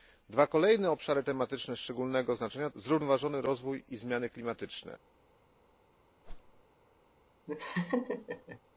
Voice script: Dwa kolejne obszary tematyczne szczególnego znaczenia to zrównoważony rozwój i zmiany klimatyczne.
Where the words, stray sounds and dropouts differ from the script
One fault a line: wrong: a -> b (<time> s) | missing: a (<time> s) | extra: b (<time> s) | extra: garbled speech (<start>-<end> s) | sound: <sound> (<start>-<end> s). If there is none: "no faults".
missing: to (2.7 s)
sound: whoosh (6.2-6.6 s)
sound: laugh (7.5-8.6 s)